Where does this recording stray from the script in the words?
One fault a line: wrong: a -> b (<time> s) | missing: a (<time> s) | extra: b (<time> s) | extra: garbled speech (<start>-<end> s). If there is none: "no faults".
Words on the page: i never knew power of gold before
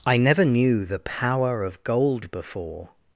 extra: the (0.8 s)